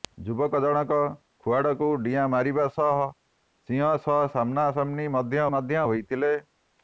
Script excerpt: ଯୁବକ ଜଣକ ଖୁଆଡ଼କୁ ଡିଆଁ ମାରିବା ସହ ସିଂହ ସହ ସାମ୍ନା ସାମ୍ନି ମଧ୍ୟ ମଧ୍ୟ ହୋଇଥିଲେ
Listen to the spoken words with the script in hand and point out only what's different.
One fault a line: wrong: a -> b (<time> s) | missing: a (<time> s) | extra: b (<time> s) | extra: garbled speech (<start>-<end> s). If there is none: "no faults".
no faults